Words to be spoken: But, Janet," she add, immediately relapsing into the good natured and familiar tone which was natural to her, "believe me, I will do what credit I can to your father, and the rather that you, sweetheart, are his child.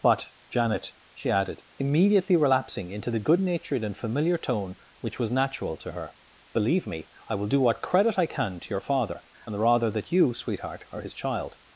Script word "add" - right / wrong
wrong